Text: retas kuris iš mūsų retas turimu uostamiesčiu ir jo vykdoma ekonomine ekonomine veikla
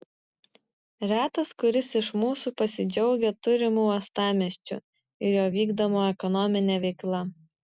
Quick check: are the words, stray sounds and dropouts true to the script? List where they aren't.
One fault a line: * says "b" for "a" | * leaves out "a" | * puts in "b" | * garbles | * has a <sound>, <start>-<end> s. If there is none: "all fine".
* says "pasidžiaugia" for "retas"
* leaves out "ekonomine"